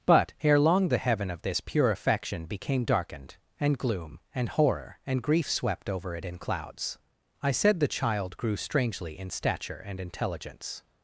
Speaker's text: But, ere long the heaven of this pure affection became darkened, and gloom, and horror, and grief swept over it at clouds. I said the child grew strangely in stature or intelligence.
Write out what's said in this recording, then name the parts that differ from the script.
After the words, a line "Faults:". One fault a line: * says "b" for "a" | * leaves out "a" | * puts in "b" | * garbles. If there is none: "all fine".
But, ere long the heaven of this pure affection became darkened, and gloom, and horror, and grief swept over it in clouds. I said the child grew strangely in stature and intelligence.
Faults:
* says "in" for "at"
* says "and" for "or"